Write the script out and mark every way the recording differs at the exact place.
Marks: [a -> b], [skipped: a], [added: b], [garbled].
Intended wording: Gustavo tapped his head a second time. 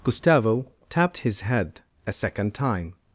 Gustavo tapped his head a second time.